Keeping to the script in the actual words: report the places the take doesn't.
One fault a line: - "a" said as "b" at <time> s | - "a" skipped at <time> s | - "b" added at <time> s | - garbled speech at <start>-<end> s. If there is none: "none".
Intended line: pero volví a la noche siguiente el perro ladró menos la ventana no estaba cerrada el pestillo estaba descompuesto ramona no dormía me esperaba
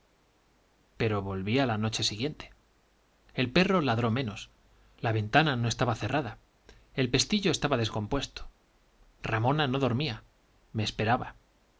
none